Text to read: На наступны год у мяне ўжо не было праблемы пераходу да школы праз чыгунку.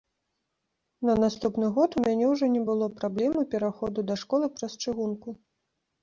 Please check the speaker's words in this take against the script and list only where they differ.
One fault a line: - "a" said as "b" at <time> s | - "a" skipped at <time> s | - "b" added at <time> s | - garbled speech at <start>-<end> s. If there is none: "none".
none